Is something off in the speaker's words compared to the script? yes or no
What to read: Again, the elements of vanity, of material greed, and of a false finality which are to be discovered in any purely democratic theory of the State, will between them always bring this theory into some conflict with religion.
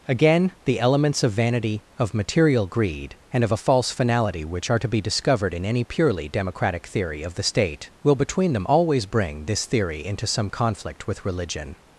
no